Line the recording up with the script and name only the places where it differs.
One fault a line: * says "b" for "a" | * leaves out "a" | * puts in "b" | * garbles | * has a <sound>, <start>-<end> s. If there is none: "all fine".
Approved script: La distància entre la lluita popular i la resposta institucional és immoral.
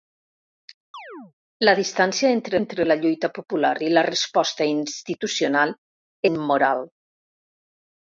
* has a chirp, 0.9-1.3 s
* puts in "entre"
* leaves out "és"